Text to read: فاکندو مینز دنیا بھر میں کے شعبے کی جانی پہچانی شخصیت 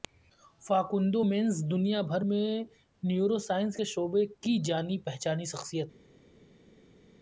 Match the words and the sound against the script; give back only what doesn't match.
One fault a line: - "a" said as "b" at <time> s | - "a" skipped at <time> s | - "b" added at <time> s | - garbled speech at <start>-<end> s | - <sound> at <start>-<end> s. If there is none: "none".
- "نیورو سائنس" added at 3.0 s